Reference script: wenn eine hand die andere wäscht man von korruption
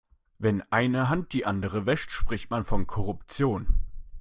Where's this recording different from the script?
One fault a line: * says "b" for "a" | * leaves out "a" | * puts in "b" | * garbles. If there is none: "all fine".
* puts in "spricht"